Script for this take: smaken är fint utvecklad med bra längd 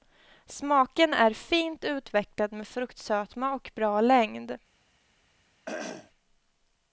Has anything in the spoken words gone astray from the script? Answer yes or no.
yes